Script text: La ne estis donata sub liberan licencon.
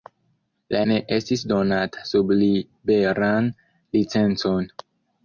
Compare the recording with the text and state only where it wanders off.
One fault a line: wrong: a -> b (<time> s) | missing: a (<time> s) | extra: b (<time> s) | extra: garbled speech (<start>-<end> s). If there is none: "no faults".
no faults